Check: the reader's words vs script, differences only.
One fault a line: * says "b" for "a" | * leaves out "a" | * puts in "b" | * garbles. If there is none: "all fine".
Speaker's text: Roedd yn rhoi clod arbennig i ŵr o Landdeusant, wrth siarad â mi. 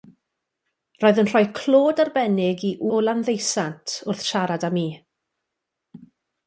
* leaves out "ŵr"